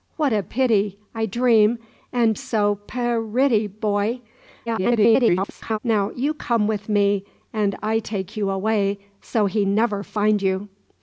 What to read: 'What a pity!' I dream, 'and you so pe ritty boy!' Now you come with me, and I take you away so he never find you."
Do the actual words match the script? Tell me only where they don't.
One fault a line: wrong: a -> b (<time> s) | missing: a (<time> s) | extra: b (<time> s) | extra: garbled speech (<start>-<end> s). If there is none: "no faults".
missing: you (2.4 s)
extra: garbled speech (4.7-5.8 s)